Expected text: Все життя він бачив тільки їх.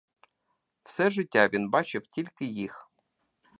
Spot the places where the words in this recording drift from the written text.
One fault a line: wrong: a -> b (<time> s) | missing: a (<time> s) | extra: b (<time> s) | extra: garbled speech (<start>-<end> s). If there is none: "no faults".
no faults